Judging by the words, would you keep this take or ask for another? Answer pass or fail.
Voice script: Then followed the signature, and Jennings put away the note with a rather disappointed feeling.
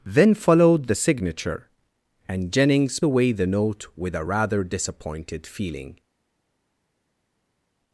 fail